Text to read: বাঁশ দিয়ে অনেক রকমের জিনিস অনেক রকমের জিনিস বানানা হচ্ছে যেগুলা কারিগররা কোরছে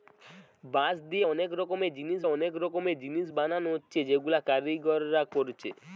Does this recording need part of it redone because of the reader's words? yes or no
no